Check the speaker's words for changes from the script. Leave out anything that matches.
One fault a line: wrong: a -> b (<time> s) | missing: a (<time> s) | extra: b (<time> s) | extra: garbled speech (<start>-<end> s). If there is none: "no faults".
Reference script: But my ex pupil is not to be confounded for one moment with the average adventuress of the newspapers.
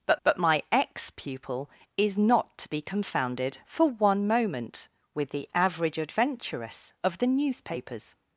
extra: but (0.2 s)